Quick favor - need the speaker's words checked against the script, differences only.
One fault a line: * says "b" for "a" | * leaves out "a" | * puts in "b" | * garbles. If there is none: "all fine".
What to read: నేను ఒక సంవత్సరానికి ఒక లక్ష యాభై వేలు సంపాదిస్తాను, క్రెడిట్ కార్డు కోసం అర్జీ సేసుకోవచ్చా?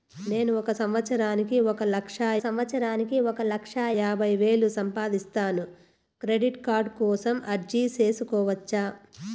* puts in "సంవత్సరానికి ఒక లక్ష"